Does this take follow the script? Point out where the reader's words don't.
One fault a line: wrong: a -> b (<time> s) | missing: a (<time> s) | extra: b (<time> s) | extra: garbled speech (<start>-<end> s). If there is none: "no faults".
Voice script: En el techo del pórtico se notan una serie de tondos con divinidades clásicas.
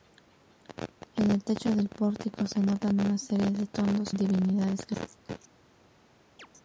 missing: con (4.1 s)